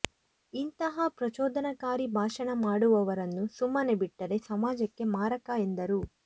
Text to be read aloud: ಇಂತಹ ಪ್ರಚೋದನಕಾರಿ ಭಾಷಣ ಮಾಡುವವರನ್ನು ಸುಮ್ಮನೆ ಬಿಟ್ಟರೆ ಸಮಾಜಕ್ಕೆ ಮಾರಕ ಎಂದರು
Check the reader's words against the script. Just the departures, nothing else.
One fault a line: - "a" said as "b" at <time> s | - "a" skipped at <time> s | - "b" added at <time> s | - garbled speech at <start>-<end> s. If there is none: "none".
none